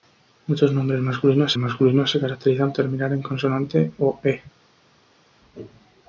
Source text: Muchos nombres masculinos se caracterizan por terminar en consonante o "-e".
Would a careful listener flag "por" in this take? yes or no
yes